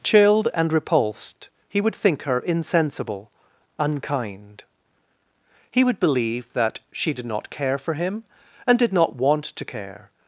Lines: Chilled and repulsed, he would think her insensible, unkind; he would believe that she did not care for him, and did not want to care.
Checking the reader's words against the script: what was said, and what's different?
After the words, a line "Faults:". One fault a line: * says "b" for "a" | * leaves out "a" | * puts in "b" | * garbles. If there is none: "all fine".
Chilled and repulsed, he would think her insensible, unkind; he would believe that she did not care for him, and did not want to care.
Faults:
all fine